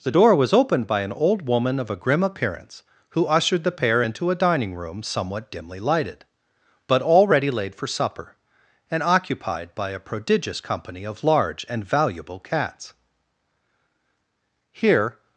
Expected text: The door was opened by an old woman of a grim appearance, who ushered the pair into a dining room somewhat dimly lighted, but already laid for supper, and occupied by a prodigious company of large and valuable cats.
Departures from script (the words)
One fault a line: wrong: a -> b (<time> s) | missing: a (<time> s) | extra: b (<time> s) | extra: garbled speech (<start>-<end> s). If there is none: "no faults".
extra: Here (14.7 s)